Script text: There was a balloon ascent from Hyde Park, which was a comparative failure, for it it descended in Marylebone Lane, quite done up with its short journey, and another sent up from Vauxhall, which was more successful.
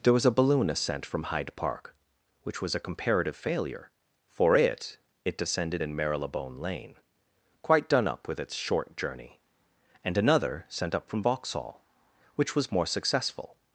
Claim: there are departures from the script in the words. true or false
false